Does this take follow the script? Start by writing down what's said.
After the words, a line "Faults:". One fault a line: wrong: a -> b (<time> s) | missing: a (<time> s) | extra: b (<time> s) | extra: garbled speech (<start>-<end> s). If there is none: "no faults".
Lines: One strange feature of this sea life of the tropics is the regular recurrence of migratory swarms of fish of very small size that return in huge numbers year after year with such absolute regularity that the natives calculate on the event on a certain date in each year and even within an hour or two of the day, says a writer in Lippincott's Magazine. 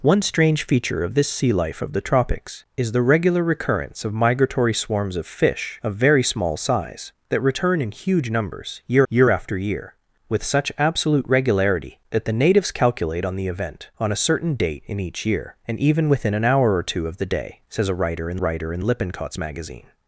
One strange feature of this sea life of the tropics is the regular recurrence of migratory swarms of fish of very small size that return in huge numbers year year after year with such absolute regularity that the natives calculate on the event on a certain date in each year and even within an hour or two of the day, says a writer in writer in Lippincott's Magazine.
Faults:
extra: year (9.1 s)
extra: writer in (18.4 s)